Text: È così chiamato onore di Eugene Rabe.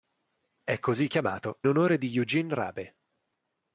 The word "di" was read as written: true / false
true